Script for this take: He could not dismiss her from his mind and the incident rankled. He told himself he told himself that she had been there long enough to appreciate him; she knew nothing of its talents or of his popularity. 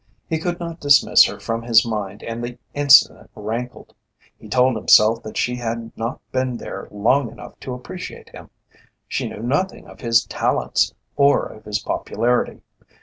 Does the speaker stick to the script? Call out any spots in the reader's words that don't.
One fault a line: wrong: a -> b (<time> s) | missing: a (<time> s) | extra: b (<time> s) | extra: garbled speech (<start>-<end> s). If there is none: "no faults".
missing: he told himself (5.2 s)
extra: not (6.0 s)
wrong: its -> his (10.0 s)